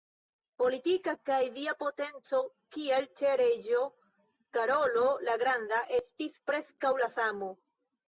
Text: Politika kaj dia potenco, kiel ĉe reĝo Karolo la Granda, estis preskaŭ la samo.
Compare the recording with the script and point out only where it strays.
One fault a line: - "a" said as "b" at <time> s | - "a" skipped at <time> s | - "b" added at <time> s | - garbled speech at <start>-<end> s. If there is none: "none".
none